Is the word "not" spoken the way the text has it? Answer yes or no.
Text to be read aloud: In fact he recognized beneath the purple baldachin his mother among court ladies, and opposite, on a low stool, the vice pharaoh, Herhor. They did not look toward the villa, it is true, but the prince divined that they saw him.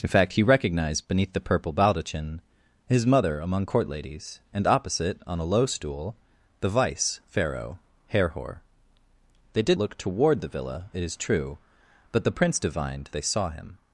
no